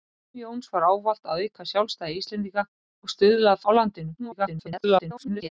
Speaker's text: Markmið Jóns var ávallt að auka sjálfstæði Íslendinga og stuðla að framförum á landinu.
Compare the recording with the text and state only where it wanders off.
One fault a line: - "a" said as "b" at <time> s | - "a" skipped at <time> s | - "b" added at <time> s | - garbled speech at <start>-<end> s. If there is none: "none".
- "framförum" skipped at 3.6 s
- garbled speech at 4.2-5.5 s